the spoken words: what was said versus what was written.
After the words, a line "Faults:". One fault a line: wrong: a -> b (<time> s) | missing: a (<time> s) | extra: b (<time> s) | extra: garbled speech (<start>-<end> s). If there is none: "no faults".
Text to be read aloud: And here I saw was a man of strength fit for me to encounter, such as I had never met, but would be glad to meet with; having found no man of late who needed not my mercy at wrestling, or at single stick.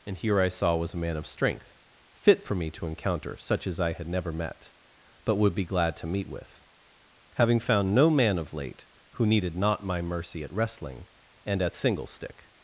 And here I saw was a man of strength fit for me to encounter, such as I had never met, but would be glad to meet with; having found no man of late who needed not my mercy at wrestling, and at single stick.
Faults:
wrong: or -> and (11.5 s)